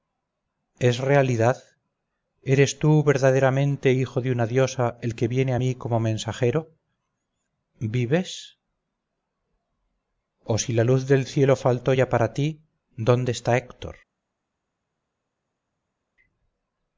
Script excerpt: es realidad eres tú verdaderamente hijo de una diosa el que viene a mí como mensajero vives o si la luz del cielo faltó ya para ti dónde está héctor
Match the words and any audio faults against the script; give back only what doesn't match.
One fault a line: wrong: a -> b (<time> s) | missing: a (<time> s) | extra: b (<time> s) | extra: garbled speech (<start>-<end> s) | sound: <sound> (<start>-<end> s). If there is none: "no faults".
no faults